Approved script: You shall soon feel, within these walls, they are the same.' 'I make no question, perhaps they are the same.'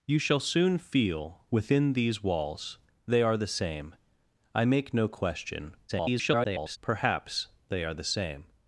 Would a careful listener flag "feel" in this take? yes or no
no